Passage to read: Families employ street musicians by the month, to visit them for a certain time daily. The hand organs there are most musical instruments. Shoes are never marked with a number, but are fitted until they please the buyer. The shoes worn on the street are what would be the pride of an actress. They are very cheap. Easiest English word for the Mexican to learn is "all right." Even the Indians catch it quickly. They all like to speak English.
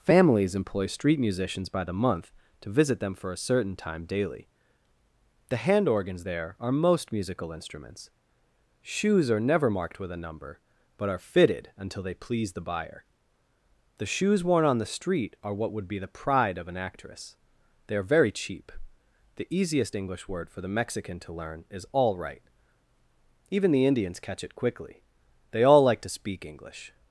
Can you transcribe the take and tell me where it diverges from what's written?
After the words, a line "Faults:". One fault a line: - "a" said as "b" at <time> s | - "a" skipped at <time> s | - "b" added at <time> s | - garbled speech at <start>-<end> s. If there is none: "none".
Families employ street musicians by the month, to visit them for a certain time daily. The hand organs there are most musical instruments. Shoes are never marked with a number, but are fitted until they please the buyer. The shoes worn on the street are what would be the pride of an actress. They are very cheap. The easiest English word for the Mexican to learn is "all right." Even the Indians catch it quickly. They all like to speak English.
Faults:
- "The" added at 19.3 s